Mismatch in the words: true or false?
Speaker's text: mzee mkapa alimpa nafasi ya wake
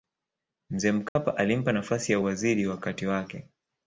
true